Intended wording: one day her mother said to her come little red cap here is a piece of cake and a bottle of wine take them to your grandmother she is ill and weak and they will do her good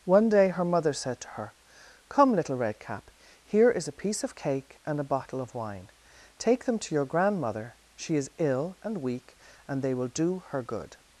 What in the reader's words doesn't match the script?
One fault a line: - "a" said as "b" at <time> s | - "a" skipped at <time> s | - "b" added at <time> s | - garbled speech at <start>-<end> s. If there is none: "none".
none